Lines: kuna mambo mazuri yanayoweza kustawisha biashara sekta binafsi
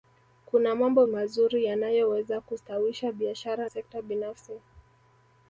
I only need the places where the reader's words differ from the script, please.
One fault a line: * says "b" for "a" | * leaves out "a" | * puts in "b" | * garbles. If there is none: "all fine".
all fine